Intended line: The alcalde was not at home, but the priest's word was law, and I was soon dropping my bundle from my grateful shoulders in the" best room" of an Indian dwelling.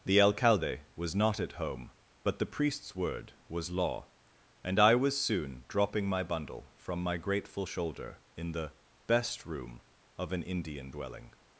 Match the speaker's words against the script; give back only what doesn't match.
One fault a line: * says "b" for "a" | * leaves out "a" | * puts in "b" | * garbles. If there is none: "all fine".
* says "shoulder" for "shoulders"